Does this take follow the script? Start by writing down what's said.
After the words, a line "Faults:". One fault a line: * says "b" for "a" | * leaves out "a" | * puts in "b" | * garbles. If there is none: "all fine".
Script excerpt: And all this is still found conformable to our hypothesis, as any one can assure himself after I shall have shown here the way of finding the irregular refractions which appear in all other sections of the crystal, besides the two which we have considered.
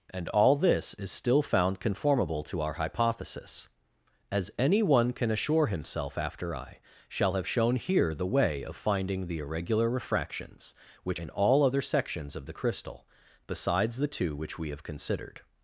And all this is still found conformable to our hypothesis, as any one can assure himself after I shall have shown here the way of finding the irregular refractions which in all other sections of the crystal, besides the two which we have considered.
Faults:
* leaves out "appear"